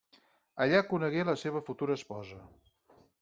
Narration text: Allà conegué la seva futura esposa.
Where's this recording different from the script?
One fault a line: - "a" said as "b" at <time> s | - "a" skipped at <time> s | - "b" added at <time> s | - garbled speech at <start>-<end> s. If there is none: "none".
none